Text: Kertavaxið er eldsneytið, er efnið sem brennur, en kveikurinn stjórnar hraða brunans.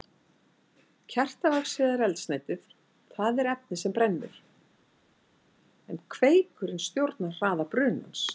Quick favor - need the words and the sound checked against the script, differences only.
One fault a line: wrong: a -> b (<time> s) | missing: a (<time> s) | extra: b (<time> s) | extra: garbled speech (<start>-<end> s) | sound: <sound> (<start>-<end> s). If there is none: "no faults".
extra: það (3.2 s)